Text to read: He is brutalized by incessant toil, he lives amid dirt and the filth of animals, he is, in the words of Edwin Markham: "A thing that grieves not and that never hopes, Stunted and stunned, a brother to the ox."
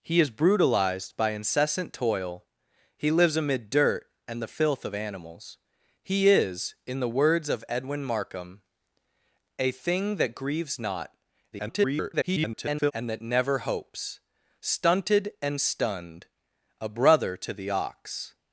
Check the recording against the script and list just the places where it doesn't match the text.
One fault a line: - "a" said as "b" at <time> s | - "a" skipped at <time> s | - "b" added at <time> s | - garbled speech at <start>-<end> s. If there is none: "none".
- garbled speech at 11.5-12.9 s